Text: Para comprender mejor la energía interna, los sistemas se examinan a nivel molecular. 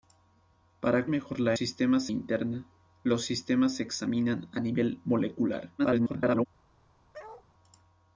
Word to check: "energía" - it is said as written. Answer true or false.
false